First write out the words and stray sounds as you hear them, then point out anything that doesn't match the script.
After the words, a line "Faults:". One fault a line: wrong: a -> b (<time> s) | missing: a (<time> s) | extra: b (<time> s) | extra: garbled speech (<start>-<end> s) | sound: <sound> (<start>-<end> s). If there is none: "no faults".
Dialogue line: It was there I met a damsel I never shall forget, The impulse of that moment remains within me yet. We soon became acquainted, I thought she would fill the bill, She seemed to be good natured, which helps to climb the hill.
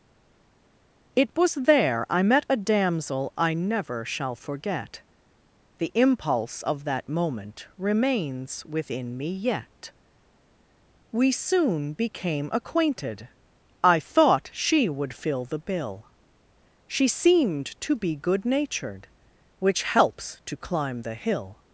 It was there I met a damsel I never shall forget, The impulse of that moment remains within me yet. We soon became acquainted, I thought she would fill the bill, She seemed to be good natured, which helps to climb the hill.
Faults:
no faults